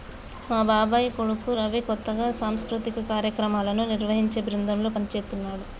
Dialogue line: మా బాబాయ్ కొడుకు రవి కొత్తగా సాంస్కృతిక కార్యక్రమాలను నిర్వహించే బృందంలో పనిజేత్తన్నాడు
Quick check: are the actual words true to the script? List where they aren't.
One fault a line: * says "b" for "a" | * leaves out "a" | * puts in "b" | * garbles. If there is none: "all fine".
all fine